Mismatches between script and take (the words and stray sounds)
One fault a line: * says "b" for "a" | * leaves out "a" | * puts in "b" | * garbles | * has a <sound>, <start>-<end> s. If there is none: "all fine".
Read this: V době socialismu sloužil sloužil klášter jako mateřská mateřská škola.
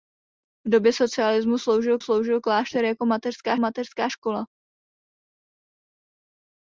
all fine